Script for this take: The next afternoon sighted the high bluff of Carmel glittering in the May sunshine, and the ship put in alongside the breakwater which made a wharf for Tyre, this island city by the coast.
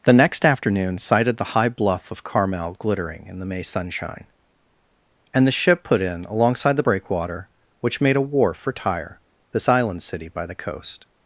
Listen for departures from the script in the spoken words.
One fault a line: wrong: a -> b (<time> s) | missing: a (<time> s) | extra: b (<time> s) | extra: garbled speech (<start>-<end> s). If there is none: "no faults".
no faults